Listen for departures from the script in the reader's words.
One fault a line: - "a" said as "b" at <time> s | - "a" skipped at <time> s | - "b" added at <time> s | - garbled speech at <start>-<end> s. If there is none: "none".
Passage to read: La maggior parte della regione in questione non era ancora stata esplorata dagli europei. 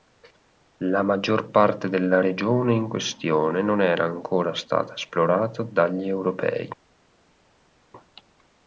none